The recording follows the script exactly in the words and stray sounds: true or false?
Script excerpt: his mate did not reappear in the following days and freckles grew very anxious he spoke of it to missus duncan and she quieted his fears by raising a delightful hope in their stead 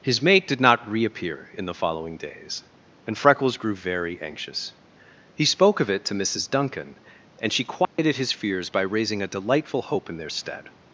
false